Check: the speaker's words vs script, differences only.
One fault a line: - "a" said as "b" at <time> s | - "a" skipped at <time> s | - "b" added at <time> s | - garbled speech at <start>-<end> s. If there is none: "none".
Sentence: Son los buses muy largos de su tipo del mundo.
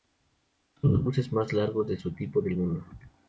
- "muy" said as "más" at 1.3 s